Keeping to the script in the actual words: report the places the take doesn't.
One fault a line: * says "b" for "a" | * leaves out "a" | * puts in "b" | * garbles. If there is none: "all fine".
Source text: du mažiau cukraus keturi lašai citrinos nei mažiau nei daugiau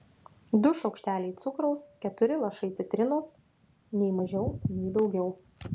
* says "šaukšteliai" for "mažiau"